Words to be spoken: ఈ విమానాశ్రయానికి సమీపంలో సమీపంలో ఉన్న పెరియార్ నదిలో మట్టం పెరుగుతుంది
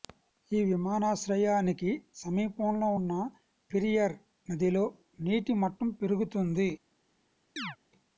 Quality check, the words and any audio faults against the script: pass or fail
fail